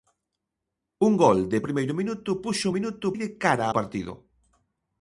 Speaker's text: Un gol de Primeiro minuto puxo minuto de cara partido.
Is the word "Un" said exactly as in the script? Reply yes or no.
yes